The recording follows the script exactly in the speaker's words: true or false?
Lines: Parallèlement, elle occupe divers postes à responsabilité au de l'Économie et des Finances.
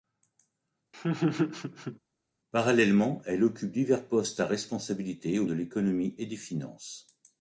true